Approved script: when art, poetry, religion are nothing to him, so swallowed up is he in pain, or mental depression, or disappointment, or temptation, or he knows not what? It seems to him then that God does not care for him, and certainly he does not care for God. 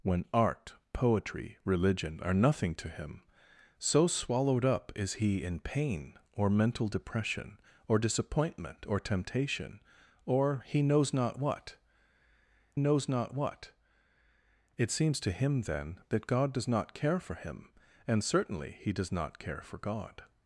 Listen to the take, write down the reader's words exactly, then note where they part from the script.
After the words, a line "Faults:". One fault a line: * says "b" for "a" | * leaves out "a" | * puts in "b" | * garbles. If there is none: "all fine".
when art, poetry, religion are nothing to him, so swallowed up is he in pain, or mental depression, or disappointment, or temptation, or he knows not what knows not what? It seems to him then that God does not care for him, and certainly he does not care for God.
Faults:
* puts in "knows not what"